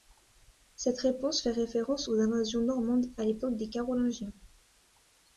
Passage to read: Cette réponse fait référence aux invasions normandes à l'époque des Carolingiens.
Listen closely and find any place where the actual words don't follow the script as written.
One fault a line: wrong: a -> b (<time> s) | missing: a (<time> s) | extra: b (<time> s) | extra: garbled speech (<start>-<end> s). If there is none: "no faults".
no faults